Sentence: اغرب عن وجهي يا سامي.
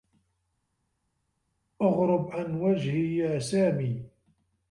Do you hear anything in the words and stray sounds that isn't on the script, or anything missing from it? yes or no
no